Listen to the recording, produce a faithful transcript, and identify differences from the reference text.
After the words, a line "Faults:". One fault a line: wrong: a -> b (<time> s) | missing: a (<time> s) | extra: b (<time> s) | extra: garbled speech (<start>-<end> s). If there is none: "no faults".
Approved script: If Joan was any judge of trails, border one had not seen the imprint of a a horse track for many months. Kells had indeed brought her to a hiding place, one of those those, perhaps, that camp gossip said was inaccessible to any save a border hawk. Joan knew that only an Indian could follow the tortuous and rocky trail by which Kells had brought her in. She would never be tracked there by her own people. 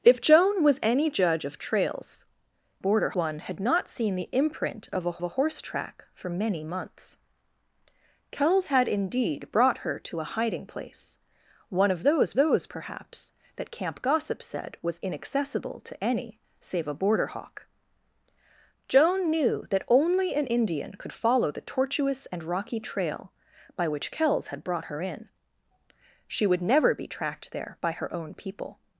If Joan was any judge of trails, border one had not seen the imprint of a a horse track for many months. Kells had indeed brought her to a hiding place, one of those those, perhaps, that camp gossip said was inaccessible to any save a border hawk. Joan knew that only an Indian could follow the tortuous and rocky trail by which Kells had brought her in. She would never be tracked there by her own people.
Faults:
no faults